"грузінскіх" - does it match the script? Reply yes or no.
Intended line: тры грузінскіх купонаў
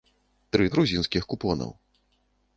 yes